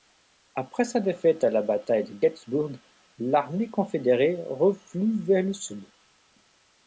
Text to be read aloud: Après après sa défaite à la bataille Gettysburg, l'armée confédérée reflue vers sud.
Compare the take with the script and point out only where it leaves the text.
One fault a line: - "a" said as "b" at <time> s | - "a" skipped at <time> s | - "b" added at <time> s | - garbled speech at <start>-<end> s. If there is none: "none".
- "après" skipped at 0.8 s
- "de" added at 2.0 s
- "le" added at 5.4 s